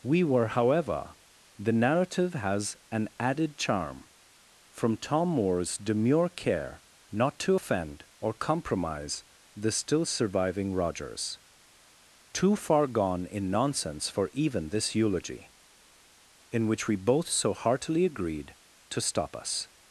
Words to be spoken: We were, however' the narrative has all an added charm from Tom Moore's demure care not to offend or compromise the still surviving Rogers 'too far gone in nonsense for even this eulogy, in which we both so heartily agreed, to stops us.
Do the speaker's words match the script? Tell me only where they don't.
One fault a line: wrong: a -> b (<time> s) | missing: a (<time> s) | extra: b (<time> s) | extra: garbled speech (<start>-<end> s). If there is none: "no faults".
missing: all (2.8 s)
wrong: stops -> stop (19.0 s)